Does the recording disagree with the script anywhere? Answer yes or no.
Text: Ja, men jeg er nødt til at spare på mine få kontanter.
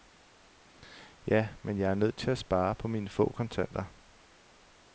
no